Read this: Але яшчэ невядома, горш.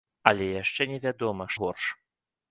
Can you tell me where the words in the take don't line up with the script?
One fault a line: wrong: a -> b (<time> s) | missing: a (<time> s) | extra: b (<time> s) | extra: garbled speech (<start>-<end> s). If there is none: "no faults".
no faults